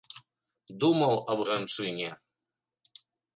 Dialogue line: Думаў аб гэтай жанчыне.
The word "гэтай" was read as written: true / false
false